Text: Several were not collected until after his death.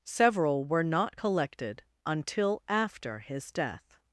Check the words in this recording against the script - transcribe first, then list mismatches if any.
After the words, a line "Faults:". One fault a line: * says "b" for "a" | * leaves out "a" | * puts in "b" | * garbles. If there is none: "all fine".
Several were not collected until after his death.
Faults:
all fine